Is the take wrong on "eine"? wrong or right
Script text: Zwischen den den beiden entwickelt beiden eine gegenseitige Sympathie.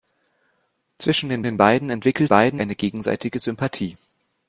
right